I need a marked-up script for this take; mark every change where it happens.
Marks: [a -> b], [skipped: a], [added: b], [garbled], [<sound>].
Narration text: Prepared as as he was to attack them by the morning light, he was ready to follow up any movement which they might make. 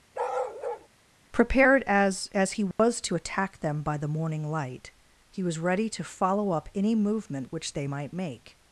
[bark] Prepared as as he was [dropout] to attack them by the morning light, he was ready to follow up any movement which they might make.